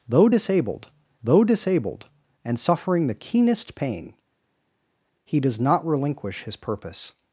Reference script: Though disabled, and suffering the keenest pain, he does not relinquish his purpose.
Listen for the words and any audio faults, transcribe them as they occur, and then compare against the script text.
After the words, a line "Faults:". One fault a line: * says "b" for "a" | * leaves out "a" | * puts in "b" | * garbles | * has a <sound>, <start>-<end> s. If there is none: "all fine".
Though disabled though disabled, and suffering the keenest pain, he does not relinquish his purpose.
Faults:
* puts in "though disabled"